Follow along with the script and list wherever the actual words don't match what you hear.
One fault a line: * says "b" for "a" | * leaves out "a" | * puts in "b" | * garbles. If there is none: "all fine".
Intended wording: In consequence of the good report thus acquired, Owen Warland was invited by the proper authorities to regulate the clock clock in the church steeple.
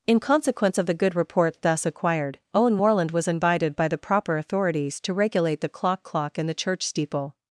all fine